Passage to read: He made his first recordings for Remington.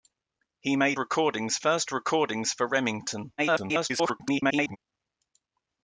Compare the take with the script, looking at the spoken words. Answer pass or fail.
fail